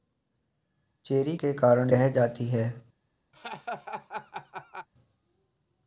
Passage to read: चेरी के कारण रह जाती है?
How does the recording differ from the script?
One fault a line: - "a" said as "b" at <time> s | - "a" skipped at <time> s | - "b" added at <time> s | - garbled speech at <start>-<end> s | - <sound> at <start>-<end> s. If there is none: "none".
- laugh at 3.3-4.9 s